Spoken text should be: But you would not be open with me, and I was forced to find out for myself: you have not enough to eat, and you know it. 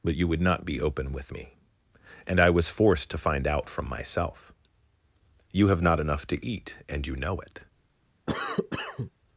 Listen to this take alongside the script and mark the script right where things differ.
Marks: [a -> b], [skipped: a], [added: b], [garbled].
But you would not be open with me, and I was forced to find out [for -> from] myself: you have not enough to eat, and you know it.